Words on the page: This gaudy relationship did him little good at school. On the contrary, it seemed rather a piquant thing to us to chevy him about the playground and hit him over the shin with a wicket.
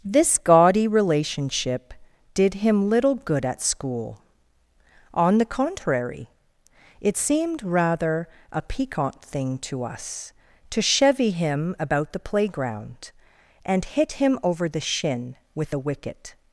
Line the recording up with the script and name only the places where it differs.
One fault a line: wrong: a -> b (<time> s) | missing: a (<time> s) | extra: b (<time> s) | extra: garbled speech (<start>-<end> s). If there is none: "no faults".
no faults